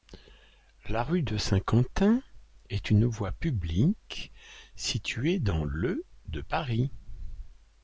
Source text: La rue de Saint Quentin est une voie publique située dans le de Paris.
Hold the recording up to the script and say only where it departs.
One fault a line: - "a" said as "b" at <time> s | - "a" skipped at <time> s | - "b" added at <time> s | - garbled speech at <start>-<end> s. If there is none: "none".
none